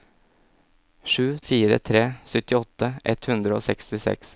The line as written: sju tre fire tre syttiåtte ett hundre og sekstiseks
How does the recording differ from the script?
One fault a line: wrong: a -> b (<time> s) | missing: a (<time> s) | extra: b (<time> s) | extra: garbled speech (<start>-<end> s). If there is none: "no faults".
missing: tre (1.4 s)